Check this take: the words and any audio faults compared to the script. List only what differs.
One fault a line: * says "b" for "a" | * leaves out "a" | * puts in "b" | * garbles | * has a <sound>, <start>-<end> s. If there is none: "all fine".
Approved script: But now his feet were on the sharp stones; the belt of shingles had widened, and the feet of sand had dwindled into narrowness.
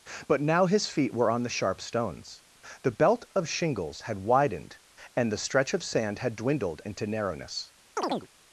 * says "stretch" for "feet"
* has a chirp, 8.0-8.3 s